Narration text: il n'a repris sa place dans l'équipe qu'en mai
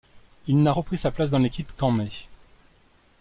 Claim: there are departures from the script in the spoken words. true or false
false